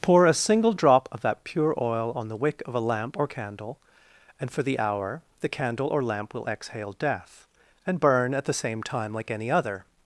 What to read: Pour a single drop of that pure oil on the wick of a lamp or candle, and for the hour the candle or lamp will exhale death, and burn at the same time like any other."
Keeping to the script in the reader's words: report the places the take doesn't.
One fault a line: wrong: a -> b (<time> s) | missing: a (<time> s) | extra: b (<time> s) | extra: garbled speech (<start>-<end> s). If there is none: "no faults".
no faults